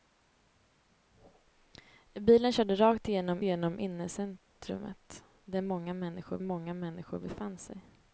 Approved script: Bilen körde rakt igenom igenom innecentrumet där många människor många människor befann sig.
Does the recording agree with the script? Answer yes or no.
yes